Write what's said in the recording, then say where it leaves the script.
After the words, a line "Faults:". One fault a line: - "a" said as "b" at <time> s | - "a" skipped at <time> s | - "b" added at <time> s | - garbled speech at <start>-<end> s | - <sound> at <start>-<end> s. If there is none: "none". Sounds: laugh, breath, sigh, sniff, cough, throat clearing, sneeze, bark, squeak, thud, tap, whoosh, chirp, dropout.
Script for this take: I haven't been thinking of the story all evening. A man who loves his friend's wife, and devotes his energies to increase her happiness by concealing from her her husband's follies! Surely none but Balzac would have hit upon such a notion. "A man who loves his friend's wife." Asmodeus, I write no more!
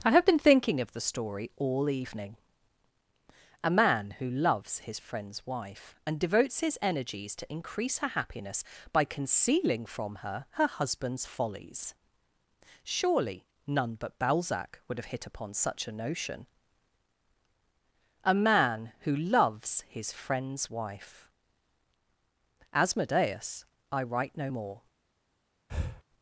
I have been thinking of the story all evening. A man who loves his friend's wife, and devotes his energies to increase her happiness by concealing from her her husband's follies! Surely none but Balzac would have hit upon such a notion. "A man who loves his friend's wife." Asmodeus, I write no more!
Faults:
- "haven't" said as "have" at 0.1 s
- breath at 25.7-26.0 s